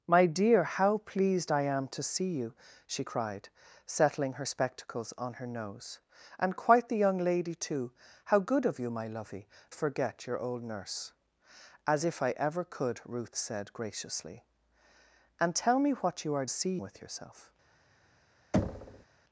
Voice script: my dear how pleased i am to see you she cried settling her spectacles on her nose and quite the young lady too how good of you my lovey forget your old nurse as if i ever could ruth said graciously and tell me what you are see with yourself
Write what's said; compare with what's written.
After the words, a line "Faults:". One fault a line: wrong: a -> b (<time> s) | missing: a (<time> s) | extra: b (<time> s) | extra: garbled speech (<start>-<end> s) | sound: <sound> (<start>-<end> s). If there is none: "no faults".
my dear how pleased i am to see you she cried settling her spectacles on her nose and quite the young lady too how good of you my lovey forget your old nurse as if i ever could ruth said graciously and tell me what you are see with yourself
Faults:
sound: thud (18.5-19.1 s)